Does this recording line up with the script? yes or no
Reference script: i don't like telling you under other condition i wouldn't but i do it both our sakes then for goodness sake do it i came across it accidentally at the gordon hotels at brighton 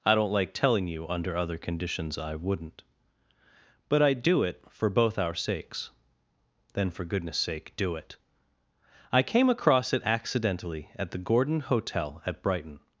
no